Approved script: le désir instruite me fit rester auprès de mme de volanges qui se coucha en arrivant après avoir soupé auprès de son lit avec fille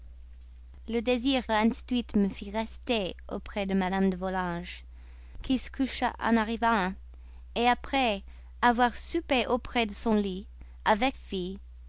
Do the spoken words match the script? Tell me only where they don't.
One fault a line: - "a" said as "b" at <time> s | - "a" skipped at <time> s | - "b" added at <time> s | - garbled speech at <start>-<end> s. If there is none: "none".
none